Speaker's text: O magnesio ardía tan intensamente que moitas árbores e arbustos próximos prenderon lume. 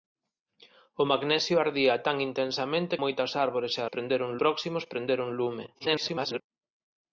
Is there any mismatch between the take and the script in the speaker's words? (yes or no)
yes